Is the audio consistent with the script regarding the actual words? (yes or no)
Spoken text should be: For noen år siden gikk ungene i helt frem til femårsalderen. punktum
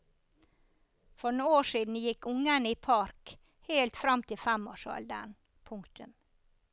no